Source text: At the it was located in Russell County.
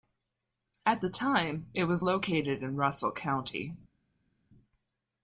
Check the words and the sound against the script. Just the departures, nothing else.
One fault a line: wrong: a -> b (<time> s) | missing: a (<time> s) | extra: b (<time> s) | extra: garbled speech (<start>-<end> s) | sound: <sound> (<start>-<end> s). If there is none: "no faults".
extra: time (1.1 s)